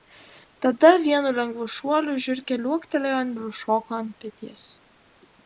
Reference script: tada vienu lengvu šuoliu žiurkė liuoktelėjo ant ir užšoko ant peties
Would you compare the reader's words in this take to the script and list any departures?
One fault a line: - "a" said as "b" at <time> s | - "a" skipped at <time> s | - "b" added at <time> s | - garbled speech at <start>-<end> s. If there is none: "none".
none